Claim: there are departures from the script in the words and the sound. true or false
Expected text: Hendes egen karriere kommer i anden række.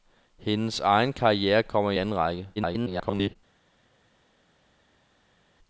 true